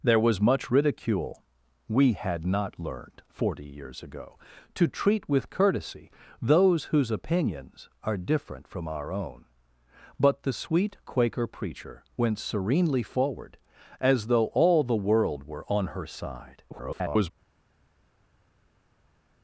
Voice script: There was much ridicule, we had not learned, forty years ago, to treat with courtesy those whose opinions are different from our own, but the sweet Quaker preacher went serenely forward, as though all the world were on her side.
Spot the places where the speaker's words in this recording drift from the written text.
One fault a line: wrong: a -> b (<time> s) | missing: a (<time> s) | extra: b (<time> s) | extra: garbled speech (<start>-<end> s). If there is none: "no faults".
extra: garbled speech (16.7-17.3 s)